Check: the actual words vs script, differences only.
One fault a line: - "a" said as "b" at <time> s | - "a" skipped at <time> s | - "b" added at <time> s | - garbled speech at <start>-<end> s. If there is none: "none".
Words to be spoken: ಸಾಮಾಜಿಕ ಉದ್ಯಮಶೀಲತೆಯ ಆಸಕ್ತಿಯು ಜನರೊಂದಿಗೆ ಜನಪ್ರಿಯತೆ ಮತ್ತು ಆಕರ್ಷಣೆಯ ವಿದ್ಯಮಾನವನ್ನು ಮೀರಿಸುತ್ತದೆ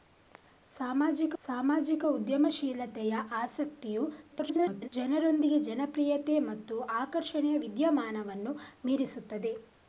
- "ಸಾಮಾಜಿಕ" added at 1.4 s
- garbled speech at 4.3-4.9 s